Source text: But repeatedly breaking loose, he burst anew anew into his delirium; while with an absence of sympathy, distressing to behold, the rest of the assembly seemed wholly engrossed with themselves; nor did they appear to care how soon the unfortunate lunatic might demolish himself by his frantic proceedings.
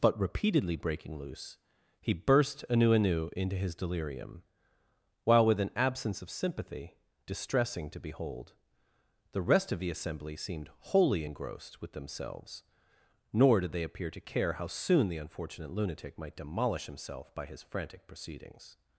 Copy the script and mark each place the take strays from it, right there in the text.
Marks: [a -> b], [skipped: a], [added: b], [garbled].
But repeatedly breaking loose, he burst anew anew into his delirium; while with an absence of sympathy, distressing to behold, the rest of the assembly seemed wholly engrossed with themselves; nor did they appear to care how soon the unfortunate lunatic might demolish himself by his frantic proceedings.